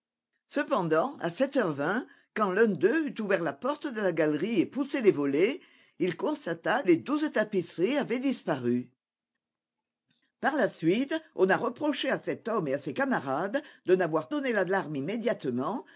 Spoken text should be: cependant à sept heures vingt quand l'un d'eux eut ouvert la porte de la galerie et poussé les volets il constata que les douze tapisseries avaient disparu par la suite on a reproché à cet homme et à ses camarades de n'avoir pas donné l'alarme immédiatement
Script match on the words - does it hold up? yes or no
no